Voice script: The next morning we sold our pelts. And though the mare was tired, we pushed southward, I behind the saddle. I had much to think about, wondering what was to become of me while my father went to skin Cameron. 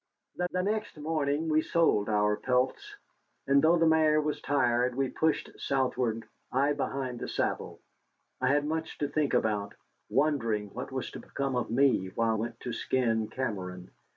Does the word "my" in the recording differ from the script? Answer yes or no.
yes